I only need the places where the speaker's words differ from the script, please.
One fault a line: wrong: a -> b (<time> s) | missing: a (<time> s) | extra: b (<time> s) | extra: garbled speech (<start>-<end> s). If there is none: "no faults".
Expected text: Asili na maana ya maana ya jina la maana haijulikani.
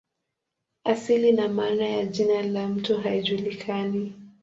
missing: maana ya (2.0 s)
wrong: maana -> mto (2.7 s)